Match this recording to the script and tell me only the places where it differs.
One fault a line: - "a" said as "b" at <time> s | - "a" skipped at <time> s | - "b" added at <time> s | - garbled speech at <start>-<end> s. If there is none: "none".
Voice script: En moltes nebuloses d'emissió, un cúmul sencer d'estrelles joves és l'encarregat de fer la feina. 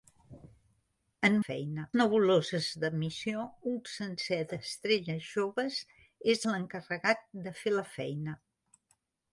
- "moltes" said as "feina" at 1.4 s
- "cúmul" skipped at 3.8 s